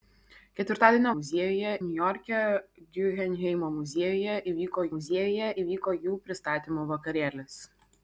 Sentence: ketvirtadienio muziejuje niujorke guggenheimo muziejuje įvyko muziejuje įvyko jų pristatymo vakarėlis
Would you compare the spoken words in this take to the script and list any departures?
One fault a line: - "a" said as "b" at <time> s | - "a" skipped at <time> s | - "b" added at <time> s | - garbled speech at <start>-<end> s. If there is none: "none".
none